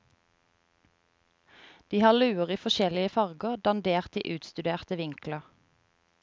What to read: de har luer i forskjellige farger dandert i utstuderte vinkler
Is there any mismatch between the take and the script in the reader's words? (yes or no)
no